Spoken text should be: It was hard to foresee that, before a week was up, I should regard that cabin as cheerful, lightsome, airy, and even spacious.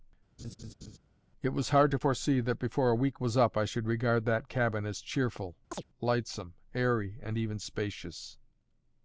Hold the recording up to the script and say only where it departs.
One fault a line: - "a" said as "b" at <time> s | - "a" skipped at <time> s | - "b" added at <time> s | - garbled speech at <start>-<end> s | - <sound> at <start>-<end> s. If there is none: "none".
- laugh at 0.4-1.0 s
- chirp at 5.7-5.8 s